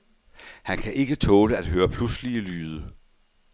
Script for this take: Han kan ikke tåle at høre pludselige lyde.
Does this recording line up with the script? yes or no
yes